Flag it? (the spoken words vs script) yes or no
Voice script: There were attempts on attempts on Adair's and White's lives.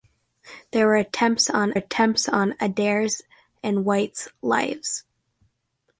no